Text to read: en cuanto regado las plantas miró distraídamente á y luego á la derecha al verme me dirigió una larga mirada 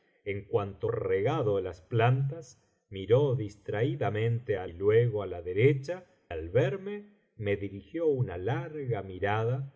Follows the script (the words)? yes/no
yes